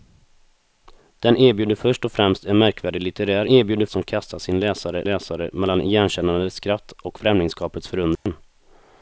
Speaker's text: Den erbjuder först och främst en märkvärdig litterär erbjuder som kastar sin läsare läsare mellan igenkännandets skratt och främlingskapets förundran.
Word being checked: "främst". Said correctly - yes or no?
yes